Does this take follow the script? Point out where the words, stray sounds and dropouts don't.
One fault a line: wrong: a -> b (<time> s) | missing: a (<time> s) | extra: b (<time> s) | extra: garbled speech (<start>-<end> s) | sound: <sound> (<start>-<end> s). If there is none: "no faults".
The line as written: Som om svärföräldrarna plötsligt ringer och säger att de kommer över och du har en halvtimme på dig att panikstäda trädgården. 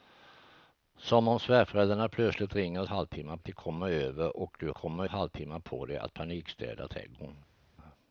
wrong: säger -> halvtimme (2.9 s)
wrong: har -> kommer (4.7 s)